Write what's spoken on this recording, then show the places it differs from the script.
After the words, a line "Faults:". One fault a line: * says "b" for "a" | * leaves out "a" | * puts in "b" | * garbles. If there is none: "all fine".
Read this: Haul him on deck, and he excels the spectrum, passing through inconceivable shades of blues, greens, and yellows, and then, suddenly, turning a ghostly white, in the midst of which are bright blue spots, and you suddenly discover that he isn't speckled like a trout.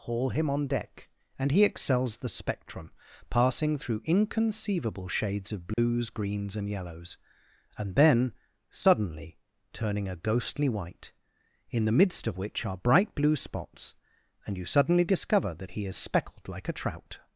Haul him on deck, and he excels the spectrum, passing through inconceivable shades of blues, greens, and yellows, and then, suddenly, turning a ghostly white, in the midst of which are bright blue spots, and you suddenly discover that he is speckled like a trout.
Faults:
* says "is" for "isn't"